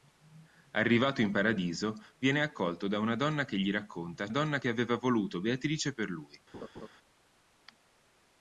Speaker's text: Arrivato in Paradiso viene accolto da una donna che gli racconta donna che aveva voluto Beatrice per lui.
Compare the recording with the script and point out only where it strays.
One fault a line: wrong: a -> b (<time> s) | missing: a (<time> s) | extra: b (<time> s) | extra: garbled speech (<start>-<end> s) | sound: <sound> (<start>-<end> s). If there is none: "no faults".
sound: laugh (6.5-6.9 s)